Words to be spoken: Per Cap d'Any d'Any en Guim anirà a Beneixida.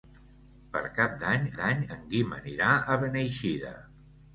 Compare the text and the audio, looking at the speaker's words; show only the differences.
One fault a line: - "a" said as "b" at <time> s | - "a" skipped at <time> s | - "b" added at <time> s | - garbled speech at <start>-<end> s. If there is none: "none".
none